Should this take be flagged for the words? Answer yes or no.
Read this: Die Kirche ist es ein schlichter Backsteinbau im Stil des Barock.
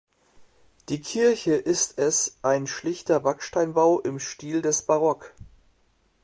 no